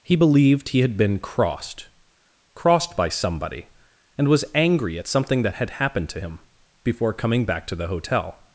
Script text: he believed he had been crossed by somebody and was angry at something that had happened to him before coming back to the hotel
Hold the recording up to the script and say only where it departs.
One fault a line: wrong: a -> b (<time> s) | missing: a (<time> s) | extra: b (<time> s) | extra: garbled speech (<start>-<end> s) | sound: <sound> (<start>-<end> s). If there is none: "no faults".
extra: crossed (2.5 s)